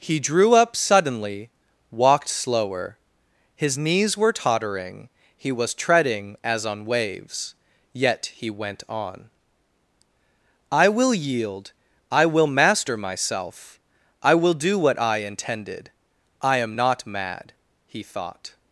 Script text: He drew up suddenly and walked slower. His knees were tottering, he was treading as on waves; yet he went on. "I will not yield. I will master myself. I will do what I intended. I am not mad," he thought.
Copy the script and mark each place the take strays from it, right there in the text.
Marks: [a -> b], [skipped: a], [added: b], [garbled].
He drew up suddenly [skipped: and] walked slower. His knees were tottering, he was treading as on waves; yet he went on. "I will [skipped: not] yield. I will master myself. I will do what I intended. I am not mad," he thought.